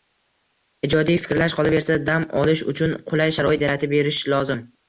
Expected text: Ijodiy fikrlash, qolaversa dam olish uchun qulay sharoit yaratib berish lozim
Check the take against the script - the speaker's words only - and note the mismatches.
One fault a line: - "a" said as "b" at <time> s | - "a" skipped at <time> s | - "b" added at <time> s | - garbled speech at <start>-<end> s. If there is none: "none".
none